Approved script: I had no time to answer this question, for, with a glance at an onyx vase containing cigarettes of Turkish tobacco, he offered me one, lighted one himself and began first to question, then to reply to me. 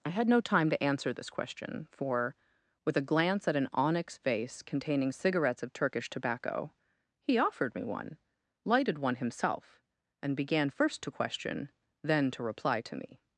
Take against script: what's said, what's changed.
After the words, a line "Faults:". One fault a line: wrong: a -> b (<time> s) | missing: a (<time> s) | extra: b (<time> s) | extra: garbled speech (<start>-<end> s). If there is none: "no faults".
I had no time to answer this question, for, with a glance at an onyx vase containing cigarettes of Turkish tobacco, he offered me one, lighted one himself and began first to question, then to reply to me.
Faults:
no faults